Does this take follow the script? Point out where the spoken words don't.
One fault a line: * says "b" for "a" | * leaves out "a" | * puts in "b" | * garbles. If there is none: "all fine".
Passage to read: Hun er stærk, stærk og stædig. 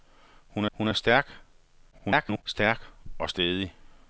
* puts in "hun"
* garbles